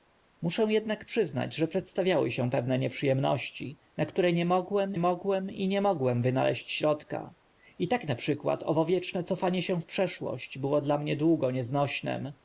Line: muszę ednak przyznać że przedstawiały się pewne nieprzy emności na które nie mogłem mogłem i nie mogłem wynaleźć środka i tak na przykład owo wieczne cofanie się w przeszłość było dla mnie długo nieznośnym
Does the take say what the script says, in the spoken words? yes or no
yes